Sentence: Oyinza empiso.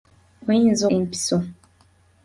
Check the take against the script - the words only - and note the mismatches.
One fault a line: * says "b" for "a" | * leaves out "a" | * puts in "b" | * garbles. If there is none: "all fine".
all fine